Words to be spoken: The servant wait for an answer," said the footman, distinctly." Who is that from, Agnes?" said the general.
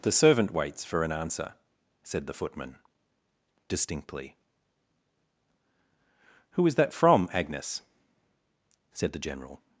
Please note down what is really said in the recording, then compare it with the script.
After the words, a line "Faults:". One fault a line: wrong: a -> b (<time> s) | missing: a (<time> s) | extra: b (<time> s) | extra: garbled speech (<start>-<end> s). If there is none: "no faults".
The servant waits for an answer," said the footman, distinctly." Who is that from, Agnes?" said the general.
Faults:
wrong: wait -> waits (0.5 s)